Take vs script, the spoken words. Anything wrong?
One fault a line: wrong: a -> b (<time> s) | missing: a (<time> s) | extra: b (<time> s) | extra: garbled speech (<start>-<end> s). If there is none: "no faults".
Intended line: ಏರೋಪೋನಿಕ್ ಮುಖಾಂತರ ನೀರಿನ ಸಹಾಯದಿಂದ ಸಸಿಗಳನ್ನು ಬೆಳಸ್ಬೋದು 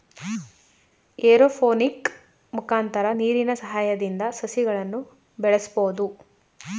no faults